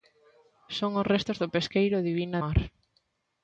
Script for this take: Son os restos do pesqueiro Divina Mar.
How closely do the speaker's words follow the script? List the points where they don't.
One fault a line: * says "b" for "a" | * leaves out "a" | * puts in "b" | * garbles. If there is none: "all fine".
all fine